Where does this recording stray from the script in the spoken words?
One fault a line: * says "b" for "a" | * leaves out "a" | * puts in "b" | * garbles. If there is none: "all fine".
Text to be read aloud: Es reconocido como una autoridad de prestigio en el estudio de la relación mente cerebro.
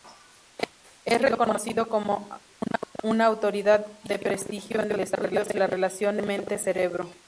all fine